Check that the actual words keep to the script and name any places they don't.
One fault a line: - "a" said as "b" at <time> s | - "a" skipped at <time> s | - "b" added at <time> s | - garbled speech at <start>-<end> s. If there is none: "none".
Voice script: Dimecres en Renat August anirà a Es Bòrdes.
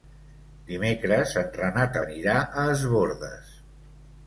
- "August" skipped at 2.0 s